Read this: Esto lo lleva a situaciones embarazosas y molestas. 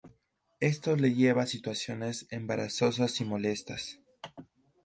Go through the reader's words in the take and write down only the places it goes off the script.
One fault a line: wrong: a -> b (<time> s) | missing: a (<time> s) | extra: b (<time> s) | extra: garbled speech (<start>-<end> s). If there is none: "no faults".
wrong: lo -> le (0.9 s)